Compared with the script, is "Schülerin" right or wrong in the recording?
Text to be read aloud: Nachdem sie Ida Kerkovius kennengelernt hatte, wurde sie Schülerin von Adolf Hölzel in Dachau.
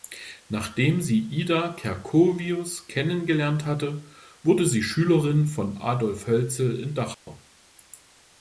right